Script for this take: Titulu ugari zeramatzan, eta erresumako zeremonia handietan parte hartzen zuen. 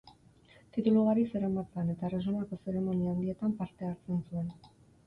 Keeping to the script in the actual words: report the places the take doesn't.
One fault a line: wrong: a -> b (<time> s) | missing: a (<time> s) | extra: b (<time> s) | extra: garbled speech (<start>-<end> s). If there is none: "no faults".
no faults